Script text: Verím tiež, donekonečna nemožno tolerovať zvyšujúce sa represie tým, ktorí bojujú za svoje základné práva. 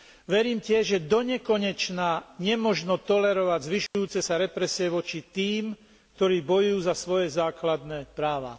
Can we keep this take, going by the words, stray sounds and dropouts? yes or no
no